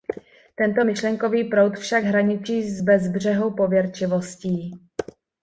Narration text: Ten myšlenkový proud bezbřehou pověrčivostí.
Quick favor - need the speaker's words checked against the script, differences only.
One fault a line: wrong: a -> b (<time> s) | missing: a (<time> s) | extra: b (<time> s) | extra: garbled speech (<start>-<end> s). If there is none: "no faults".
wrong: Ten -> Tento (0.6 s)
extra: však hraničí s (1.8 s)